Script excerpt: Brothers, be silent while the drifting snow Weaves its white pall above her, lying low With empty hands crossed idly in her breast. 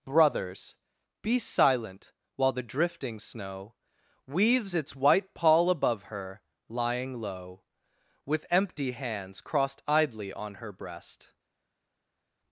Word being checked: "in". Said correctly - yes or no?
no